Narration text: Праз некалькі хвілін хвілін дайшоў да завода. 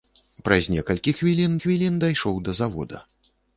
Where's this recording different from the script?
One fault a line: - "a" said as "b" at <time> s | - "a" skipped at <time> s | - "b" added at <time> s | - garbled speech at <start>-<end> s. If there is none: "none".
none